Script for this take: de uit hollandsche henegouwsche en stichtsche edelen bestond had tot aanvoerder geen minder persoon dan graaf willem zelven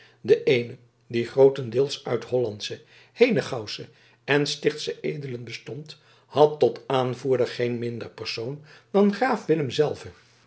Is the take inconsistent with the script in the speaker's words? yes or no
yes